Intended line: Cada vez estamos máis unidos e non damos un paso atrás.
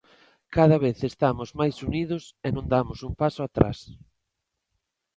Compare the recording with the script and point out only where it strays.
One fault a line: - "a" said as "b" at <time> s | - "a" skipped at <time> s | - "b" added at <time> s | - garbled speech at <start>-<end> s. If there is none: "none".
none